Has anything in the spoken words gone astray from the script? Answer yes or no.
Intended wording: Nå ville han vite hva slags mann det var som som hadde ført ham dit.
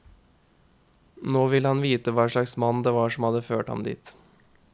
yes